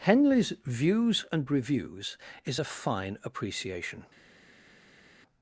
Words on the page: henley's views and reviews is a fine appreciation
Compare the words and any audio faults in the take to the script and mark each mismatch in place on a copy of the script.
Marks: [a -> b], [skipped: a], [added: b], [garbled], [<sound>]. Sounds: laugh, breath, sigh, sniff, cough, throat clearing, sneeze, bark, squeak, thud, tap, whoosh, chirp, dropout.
henley's views and reviews is a fine appreciation